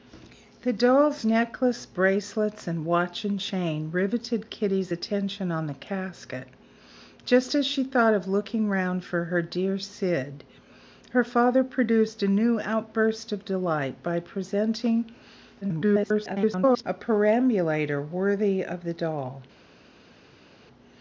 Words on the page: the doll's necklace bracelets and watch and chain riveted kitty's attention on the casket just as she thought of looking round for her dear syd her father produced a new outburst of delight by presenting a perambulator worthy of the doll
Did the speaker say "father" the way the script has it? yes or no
yes